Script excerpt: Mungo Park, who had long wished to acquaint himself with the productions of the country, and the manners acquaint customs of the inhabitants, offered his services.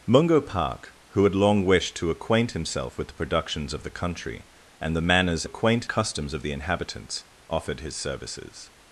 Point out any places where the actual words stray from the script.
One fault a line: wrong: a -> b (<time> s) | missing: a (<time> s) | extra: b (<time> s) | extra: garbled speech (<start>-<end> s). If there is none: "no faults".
no faults